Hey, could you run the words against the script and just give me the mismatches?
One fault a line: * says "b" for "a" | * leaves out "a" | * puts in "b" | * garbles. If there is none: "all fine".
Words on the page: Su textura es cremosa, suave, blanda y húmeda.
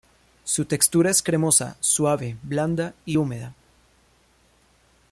all fine